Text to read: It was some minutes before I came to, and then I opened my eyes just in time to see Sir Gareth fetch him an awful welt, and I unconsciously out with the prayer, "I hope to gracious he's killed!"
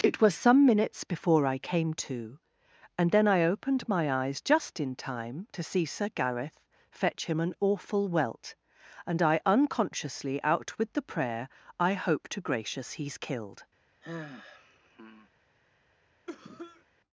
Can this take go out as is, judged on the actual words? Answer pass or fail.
pass